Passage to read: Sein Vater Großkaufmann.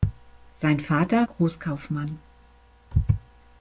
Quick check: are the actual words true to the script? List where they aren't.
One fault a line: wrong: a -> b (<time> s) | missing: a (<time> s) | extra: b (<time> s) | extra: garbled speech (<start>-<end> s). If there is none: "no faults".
no faults